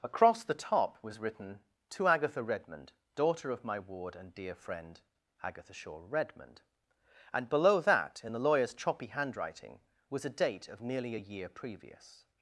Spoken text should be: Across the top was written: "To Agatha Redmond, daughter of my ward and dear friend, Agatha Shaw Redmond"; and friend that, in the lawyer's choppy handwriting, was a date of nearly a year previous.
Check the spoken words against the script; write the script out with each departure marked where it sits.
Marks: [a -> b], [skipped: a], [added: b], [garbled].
Across the top was written: "To Agatha Redmond, daughter of my ward and dear friend, Agatha Shaw Redmond"; and [friend -> below] that, in the lawyer's choppy handwriting, was a date of nearly a year previous.